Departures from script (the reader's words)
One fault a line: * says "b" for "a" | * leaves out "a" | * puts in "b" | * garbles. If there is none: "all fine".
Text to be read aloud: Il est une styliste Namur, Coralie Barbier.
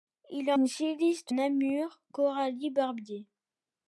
all fine